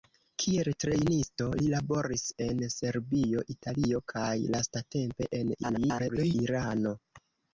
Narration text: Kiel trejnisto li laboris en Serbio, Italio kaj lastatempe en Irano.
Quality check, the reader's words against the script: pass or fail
fail